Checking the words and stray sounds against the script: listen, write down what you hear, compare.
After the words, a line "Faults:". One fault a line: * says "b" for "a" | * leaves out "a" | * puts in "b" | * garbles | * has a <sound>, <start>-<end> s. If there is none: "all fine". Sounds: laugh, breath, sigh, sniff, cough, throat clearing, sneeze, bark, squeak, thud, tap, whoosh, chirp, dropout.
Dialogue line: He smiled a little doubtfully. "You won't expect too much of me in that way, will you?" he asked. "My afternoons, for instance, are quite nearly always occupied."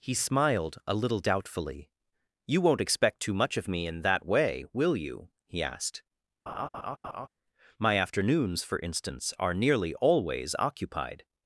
He smiled a little doubtfully. "You won't expect too much of me in that way, will you?" he asked. "My afternoons, for instance, are nearly always occupied."
Faults:
* has a laugh, 6.5-7.3 s
* leaves out "quite"